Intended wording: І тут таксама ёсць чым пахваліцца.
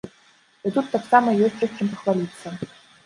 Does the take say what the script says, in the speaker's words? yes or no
no